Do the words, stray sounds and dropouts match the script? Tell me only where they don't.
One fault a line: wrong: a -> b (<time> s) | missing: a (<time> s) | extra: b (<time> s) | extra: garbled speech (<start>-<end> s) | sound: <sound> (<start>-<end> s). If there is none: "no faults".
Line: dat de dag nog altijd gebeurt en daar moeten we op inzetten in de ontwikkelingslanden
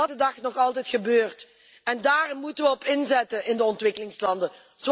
no faults